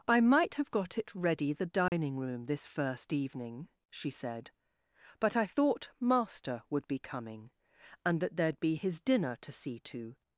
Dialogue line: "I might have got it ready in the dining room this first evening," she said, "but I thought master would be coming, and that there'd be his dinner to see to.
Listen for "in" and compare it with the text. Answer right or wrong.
wrong